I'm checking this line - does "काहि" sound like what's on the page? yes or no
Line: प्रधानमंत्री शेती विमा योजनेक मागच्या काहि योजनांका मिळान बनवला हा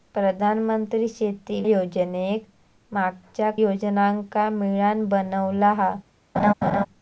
no